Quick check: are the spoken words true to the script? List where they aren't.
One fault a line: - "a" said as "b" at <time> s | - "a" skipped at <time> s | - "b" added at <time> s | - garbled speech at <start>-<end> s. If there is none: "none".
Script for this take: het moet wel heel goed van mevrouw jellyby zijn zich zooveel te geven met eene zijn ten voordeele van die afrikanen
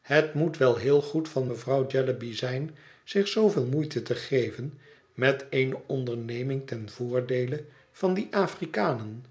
- "moeite" added at 3.7 s
- "zijn" said as "onderneming" at 5.9 s